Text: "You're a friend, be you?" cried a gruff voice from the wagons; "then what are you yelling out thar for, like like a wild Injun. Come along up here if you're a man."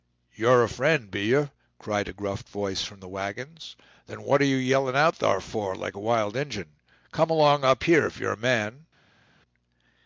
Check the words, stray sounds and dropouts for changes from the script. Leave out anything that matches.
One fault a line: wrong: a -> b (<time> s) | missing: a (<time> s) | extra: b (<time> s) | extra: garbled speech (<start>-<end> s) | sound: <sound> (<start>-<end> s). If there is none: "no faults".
missing: like (6.0 s)